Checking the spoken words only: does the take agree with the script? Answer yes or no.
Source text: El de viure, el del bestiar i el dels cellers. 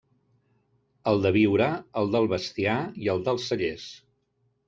yes